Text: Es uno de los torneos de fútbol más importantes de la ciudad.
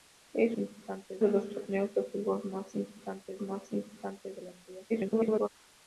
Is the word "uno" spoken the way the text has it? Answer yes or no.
no